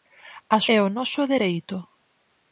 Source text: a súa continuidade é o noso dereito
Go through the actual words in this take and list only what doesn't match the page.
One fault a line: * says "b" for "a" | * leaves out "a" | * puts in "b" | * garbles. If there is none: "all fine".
* leaves out "súa continuidade"